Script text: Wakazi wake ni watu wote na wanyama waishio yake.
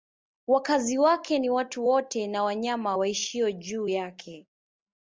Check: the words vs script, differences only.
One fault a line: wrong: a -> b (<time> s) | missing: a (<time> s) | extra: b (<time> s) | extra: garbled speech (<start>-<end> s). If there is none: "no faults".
extra: juu (3.5 s)